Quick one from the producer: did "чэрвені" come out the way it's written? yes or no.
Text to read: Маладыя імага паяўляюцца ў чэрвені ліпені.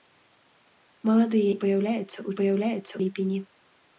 no